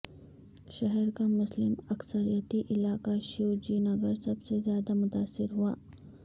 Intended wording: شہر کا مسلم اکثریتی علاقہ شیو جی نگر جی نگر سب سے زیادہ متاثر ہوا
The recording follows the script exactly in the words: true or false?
false